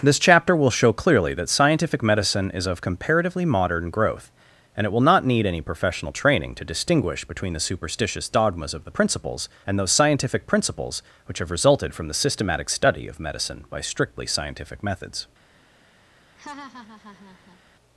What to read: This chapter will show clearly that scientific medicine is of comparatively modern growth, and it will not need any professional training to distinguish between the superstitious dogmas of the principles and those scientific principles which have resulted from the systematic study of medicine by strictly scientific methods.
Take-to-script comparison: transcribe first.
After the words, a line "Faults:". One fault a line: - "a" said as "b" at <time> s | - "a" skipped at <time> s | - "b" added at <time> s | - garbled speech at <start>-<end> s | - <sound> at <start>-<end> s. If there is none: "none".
This chapter will show clearly that scientific medicine is of comparatively modern growth, and it will not need any professional training to distinguish between the superstitious dogmas of the principles and those scientific principles which have resulted from the systematic study of medicine by strictly scientific methods.
Faults:
- laugh at 16.4-17.6 s